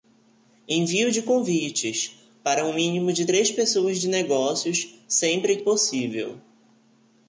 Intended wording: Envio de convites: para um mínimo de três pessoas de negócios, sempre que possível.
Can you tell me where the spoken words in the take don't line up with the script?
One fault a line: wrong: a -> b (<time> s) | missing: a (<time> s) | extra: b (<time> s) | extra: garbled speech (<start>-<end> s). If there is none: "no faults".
missing: que (5.6 s)